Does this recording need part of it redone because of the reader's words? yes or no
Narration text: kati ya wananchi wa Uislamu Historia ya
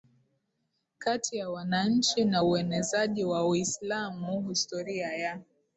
yes